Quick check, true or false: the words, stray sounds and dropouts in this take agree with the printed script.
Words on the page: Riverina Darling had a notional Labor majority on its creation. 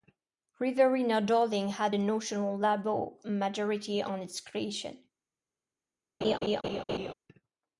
false